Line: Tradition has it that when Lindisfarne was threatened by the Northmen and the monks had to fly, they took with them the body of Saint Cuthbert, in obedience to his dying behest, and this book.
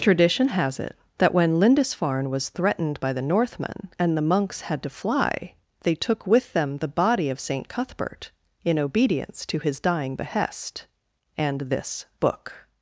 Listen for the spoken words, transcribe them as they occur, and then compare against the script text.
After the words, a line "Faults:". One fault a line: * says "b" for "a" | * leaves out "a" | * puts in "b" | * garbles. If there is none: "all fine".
Tradition has it that when Lindisfarne was threatened by the Northmen and the monks had to fly, they took with them the body of Saint Cuthbert, in obedience to his dying behest, and this book.
Faults:
all fine